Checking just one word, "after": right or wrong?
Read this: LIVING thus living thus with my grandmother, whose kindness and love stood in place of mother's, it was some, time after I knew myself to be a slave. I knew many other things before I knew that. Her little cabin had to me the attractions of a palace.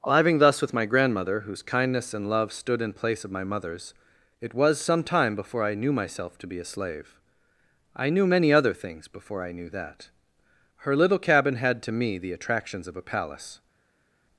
wrong